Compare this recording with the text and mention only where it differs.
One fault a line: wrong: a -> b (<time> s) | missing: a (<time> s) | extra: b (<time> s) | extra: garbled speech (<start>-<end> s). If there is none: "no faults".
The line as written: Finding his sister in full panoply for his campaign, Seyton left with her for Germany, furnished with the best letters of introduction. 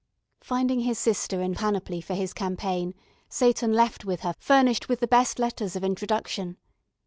missing: full (1.5 s)
missing: for Germany (4.3 s)